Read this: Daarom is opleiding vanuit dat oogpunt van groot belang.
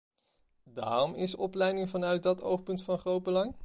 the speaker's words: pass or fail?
pass